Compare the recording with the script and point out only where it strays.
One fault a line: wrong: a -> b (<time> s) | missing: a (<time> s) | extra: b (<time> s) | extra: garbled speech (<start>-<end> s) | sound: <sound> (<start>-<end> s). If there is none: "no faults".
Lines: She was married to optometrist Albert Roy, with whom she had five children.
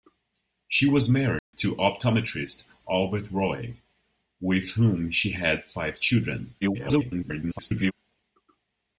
sound: dropout (1.4-1.5 s)
extra: garbled speech (6.6-7.9 s)